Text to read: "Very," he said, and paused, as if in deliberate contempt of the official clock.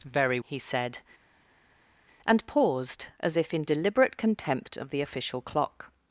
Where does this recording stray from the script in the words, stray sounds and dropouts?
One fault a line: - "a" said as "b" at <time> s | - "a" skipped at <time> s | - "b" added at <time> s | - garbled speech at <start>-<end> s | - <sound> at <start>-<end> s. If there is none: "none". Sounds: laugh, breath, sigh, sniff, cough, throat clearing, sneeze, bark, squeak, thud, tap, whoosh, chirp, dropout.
none